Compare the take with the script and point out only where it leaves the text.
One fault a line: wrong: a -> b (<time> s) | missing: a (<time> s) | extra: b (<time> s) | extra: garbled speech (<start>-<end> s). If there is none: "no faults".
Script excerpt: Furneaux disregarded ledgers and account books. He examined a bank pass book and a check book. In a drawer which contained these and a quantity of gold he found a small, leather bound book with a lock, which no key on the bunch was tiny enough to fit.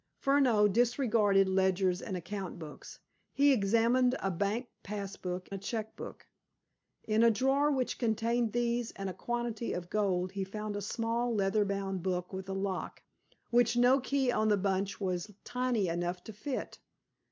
missing: and (5.5 s)